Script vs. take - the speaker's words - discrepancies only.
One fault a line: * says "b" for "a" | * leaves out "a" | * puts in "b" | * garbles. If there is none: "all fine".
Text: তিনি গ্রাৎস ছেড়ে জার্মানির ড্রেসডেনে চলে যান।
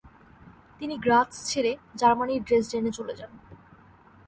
all fine